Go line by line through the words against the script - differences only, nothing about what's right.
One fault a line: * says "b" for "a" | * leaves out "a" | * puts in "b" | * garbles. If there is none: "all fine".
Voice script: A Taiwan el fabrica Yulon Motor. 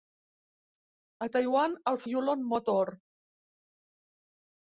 * leaves out "fabrica"